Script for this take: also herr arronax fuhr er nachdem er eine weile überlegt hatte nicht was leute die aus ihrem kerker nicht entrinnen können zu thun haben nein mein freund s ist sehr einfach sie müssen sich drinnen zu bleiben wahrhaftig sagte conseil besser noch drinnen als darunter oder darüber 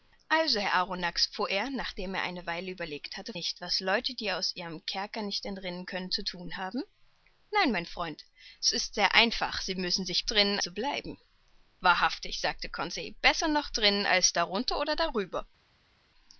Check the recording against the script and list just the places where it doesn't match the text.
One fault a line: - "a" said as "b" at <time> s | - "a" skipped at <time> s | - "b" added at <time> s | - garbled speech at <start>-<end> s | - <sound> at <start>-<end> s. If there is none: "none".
none